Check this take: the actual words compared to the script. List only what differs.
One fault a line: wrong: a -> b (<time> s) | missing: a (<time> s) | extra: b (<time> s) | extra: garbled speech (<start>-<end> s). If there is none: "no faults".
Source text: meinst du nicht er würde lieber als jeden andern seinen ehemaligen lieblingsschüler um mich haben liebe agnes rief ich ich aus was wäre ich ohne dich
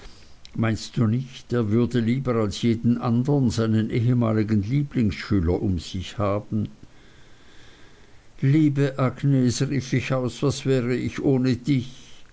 wrong: mich -> sich (5.8 s)
missing: ich (10.1 s)